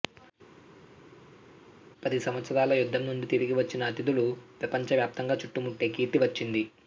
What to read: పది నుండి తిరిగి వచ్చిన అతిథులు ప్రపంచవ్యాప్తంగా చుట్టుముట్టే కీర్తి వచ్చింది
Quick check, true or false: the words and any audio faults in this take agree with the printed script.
false